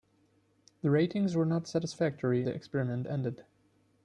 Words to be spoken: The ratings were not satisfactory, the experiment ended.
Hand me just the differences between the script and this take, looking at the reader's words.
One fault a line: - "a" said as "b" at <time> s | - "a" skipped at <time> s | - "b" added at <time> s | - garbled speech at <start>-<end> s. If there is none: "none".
none